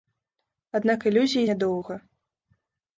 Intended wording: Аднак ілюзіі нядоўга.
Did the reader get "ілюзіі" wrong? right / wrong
right